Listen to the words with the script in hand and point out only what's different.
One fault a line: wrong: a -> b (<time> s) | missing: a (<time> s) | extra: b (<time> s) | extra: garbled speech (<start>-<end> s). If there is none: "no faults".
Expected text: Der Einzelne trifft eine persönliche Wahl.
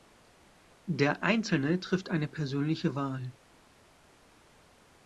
no faults